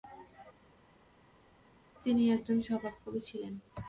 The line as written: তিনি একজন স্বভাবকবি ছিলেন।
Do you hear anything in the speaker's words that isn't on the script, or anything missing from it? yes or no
no